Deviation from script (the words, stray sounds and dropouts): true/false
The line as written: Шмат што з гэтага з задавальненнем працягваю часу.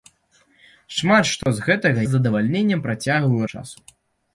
true